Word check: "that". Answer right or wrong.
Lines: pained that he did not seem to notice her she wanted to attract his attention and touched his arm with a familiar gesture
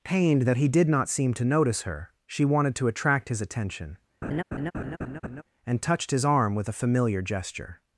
right